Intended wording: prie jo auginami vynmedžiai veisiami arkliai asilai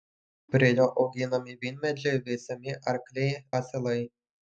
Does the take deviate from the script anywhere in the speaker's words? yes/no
no